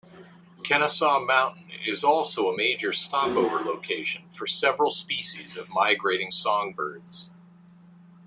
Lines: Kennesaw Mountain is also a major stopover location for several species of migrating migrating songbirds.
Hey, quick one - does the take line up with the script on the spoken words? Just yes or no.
no